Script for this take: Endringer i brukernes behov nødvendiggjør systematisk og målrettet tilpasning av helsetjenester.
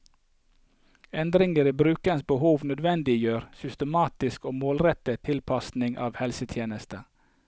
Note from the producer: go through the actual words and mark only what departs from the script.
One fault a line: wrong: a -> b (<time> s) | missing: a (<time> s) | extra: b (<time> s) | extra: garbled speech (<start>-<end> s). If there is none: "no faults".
no faults